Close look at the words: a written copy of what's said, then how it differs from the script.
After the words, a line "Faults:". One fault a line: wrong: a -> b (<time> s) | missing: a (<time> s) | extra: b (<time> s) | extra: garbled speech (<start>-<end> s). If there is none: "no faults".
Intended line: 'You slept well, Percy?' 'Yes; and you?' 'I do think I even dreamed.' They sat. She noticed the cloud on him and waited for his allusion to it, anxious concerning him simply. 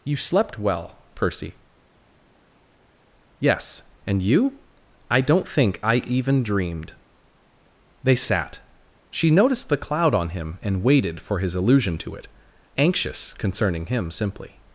'You slept well, Percy?' 'Yes; and you?' 'I don't think I even dreamed.' They sat. She noticed the cloud on him and waited for his allusion to it, anxious concerning him simply.
Faults:
wrong: do -> don't (5.2 s)